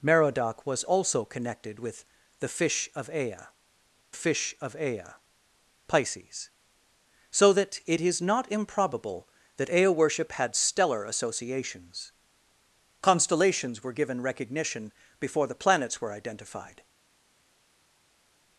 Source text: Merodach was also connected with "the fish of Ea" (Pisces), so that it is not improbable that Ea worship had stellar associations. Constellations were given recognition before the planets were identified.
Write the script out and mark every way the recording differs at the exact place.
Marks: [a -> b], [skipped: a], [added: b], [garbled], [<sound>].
Merodach was also connected with "the fish of Ea" [added: fish of Ea] (Pisces), so that it is not improbable that Ea worship had stellar associations. Constellations were given recognition before the planets were identified.